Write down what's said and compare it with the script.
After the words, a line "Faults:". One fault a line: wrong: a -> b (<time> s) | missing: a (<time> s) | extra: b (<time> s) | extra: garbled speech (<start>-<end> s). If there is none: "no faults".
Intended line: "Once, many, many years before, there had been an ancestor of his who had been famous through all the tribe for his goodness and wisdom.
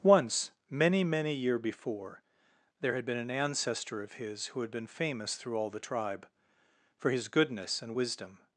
"Once, many, many year before, there had been an ancestor of his who had been famous through all the tribe for his goodness and wisdom.
Faults:
wrong: years -> year (1.3 s)